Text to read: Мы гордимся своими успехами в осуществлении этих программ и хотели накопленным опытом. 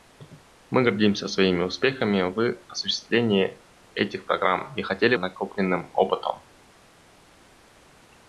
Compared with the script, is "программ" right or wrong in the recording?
right